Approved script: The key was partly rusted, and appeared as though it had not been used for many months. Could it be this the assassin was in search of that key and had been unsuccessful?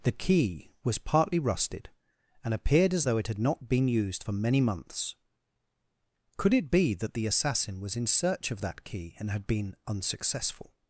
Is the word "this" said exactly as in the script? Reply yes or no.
no